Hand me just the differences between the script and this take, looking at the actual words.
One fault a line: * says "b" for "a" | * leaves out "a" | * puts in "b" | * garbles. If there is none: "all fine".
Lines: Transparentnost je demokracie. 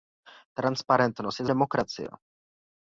all fine